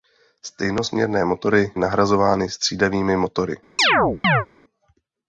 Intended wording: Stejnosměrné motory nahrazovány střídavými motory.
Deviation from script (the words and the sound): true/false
true